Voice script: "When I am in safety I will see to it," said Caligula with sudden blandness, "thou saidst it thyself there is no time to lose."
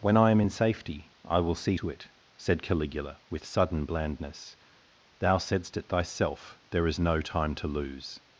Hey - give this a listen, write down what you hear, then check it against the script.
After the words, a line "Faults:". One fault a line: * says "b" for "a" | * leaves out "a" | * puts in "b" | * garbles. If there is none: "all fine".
"When I am in safety I will see to it," said Caligula with sudden blandness, "thou saidst it thyself there is no time to lose."
Faults:
all fine